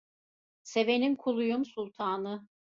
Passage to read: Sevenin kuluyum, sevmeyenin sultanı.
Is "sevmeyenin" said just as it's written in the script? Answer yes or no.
no